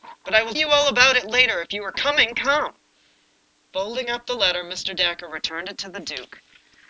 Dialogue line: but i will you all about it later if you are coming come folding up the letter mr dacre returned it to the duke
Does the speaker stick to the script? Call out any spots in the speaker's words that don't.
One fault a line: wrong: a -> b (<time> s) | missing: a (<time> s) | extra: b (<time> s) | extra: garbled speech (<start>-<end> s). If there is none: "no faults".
no faults